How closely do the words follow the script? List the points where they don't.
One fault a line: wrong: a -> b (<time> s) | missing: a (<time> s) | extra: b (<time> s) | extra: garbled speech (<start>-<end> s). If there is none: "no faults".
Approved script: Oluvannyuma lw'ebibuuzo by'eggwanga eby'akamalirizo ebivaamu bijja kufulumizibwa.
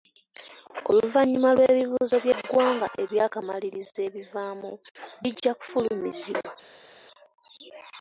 no faults